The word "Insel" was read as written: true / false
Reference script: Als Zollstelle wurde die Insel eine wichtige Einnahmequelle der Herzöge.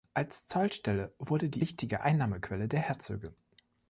false